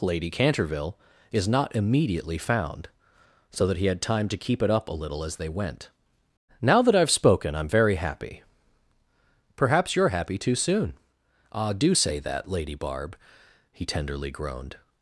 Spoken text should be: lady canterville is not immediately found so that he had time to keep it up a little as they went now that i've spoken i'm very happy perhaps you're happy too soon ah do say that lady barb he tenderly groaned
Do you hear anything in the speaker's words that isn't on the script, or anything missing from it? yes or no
no